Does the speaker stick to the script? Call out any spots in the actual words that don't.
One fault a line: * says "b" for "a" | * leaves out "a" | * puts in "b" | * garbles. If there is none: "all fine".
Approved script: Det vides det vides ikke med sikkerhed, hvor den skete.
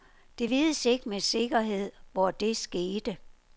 * leaves out "det vides"
* says "det" for "den"